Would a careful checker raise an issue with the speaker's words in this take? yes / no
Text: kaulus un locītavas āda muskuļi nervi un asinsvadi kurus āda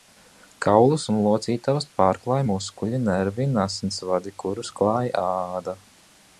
yes